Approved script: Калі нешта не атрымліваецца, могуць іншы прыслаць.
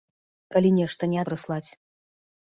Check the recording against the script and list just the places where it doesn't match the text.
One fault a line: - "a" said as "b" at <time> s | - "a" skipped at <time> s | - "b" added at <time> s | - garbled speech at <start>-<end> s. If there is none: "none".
- "атрымліваецца могуць іншы" skipped at 1.2 s